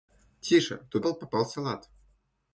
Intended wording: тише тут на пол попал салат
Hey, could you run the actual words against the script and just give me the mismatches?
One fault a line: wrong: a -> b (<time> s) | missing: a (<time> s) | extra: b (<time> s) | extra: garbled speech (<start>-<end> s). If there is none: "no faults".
missing: на (1.1 s)